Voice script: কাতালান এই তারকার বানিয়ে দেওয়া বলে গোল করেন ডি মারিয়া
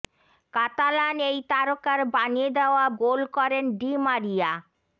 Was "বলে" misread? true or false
true